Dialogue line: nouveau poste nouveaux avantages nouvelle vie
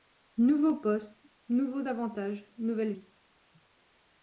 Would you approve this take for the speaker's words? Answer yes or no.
yes